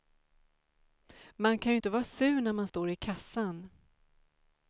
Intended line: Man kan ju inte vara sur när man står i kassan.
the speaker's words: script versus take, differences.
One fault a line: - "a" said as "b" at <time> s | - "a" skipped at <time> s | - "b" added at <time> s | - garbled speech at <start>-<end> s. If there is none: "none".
none